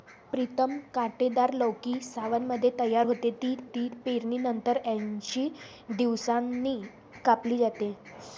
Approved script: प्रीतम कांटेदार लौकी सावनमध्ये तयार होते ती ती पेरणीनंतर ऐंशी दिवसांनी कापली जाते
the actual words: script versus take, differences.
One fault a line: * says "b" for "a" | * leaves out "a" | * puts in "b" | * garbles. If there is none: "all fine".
all fine